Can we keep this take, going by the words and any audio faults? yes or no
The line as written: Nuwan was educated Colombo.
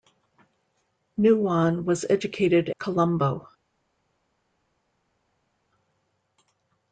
yes